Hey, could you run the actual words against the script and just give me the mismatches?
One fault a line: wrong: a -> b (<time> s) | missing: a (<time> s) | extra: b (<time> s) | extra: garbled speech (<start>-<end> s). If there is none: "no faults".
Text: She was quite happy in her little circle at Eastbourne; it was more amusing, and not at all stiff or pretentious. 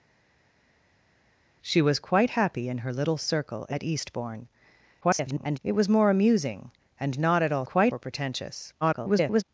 extra: garbled speech (5.0-5.6 s)
wrong: stiff -> quite (7.6 s)
extra: garbled speech (8.8-9.4 s)